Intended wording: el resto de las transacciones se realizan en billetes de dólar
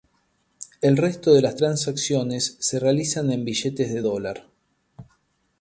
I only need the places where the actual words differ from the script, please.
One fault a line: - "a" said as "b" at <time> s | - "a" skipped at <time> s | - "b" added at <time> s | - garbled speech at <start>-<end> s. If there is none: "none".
none